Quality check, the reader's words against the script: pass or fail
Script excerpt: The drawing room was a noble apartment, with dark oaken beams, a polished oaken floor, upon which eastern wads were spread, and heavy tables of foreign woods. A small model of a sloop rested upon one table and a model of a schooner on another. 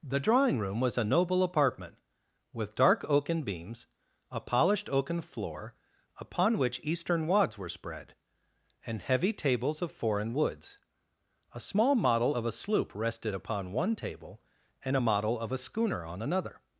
pass